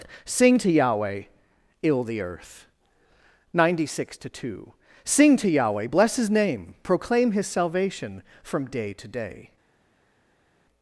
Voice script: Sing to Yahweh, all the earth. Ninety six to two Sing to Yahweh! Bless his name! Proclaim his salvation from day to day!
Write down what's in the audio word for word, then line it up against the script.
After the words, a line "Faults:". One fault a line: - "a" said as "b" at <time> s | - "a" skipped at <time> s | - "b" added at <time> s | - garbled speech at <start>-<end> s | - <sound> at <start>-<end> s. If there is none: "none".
Sing to Yahweh, ill the earth. Ninety six to two Sing to Yahweh! Bless his name! Proclaim his salvation from day to day!
Faults:
- "all" said as "ill" at 1.8 s